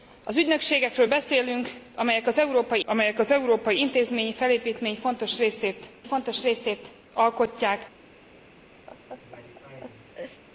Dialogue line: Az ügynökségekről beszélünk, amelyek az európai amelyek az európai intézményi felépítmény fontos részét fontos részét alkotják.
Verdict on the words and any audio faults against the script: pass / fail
fail